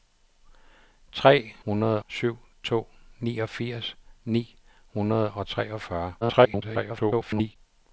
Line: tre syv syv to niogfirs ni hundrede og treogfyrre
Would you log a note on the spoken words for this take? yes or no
yes